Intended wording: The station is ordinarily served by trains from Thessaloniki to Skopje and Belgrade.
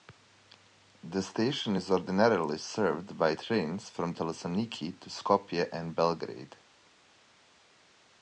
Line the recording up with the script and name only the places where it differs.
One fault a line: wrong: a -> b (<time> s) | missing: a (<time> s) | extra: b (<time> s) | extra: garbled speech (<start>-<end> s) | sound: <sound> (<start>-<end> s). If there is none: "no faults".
no faults